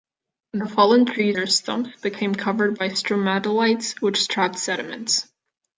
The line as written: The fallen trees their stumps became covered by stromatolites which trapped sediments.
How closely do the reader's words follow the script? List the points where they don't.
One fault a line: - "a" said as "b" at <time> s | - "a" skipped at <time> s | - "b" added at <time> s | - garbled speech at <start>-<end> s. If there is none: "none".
none